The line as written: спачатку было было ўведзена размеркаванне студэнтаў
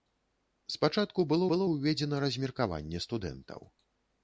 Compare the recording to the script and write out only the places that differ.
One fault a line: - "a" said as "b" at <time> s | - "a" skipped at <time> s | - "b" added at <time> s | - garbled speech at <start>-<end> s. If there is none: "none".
none